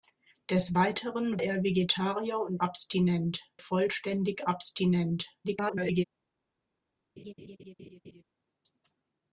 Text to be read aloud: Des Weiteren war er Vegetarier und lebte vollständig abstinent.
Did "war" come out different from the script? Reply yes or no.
yes